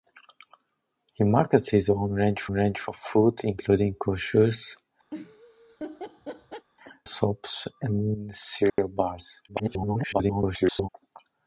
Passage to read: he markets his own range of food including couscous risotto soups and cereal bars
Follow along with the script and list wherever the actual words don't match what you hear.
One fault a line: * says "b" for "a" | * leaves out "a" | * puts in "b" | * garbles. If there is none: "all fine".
* puts in "range"
* leaves out "risotto"
* garbles